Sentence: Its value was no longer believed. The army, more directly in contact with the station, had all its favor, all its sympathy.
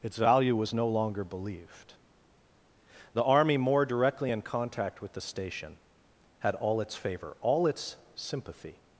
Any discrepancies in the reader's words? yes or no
no